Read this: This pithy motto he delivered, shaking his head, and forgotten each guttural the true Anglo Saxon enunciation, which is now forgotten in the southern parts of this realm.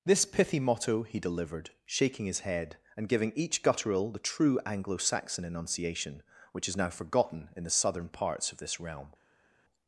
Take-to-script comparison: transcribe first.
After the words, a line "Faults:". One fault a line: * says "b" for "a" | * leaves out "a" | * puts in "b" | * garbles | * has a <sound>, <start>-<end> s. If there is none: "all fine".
This pithy motto he delivered, shaking his head, and giving each guttural the true Anglo Saxon enunciation, which is now forgotten in the southern parts of this realm.
Faults:
* says "giving" for "forgotten"